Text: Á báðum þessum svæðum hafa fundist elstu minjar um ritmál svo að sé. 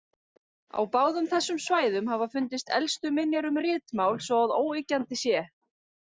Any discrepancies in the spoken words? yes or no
yes